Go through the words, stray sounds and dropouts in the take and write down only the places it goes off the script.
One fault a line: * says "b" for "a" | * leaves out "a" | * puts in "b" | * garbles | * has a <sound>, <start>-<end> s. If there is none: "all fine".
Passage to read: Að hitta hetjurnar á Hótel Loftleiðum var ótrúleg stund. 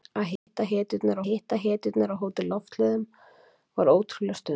* has a dropout, 0.4-0.5 s
* puts in "hitta hetjurnar"